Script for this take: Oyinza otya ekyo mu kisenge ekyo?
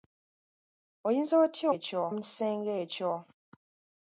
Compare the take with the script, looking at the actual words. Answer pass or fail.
pass